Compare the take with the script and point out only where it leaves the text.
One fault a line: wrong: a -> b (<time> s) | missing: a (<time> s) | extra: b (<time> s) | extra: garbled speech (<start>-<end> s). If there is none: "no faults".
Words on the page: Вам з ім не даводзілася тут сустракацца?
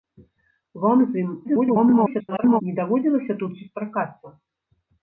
extra: garbled speech (1.4-2.6 s)